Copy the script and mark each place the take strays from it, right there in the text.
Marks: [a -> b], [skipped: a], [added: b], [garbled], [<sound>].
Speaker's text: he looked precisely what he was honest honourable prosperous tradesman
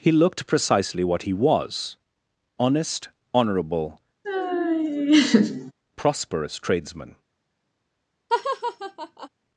he looked precisely what he was honest honourable [laugh] prosperous tradesman [laugh]